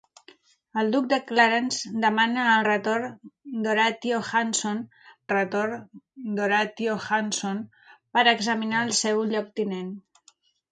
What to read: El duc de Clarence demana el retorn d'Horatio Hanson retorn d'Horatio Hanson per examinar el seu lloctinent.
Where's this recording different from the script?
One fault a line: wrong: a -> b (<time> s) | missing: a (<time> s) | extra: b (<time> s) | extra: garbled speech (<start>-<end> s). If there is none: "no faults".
no faults